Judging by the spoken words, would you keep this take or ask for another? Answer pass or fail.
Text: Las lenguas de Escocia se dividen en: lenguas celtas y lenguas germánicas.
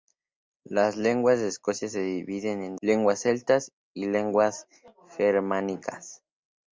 pass